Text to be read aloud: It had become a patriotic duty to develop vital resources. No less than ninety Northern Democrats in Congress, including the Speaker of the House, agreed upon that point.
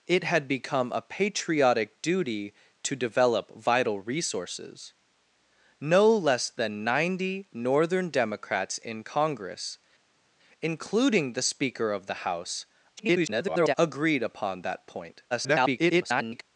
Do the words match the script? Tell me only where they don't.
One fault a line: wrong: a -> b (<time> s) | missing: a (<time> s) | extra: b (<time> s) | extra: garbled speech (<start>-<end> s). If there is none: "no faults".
extra: garbled speech (13.0-13.7 s)
extra: garbled speech (15.3-16.4 s)